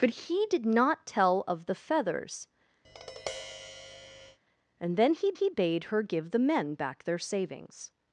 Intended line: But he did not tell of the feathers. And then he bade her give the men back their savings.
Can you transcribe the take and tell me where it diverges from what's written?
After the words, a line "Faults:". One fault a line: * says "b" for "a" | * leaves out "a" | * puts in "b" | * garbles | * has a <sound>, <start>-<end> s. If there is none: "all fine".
But he did not tell of the feathers. And then he he bade her give the men back their savings.
Faults:
* has a tap, 2.8-4.4 s
* puts in "he"